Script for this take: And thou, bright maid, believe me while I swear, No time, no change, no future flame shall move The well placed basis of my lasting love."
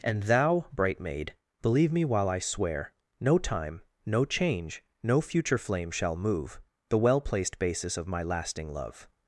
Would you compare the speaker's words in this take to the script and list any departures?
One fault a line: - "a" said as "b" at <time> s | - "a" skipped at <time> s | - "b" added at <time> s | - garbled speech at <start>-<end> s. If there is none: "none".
none